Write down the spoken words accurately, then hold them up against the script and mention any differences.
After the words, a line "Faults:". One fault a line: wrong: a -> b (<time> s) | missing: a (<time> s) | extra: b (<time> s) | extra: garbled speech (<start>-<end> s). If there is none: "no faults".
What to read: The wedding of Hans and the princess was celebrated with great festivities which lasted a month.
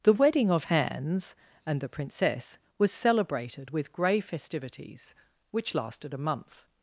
The wedding of Hans and the princess was celebrated with grey festivities which lasted a month.
Faults:
wrong: great -> grey (3.9 s)